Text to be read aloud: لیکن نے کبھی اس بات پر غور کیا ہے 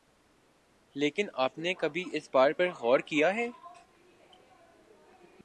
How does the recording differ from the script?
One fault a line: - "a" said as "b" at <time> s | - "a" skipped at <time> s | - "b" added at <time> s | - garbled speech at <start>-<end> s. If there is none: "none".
- "آپ" added at 1.4 s